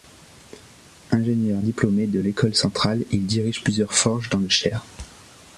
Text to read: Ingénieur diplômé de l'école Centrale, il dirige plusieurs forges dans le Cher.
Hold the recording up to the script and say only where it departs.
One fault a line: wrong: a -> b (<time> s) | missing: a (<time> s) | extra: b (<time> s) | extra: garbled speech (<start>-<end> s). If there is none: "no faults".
no faults